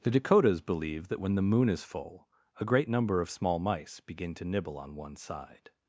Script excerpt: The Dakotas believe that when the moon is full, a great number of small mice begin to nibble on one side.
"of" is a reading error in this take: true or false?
false